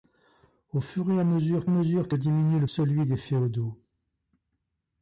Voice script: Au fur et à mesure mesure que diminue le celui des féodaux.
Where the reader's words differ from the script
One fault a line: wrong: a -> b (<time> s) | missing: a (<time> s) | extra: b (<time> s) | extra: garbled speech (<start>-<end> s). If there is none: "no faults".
no faults